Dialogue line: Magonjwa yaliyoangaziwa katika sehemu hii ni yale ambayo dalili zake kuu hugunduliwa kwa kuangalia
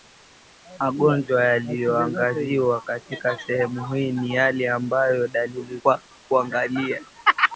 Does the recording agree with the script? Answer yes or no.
no